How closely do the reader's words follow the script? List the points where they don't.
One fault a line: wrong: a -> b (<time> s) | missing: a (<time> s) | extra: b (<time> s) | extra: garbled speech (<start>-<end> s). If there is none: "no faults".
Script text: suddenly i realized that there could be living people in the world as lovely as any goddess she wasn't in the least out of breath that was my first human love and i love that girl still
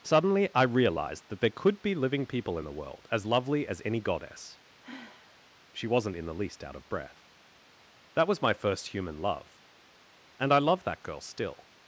no faults